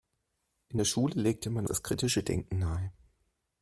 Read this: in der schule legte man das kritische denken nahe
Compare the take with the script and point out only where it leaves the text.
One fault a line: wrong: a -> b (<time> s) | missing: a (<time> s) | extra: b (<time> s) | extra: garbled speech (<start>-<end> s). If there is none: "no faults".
no faults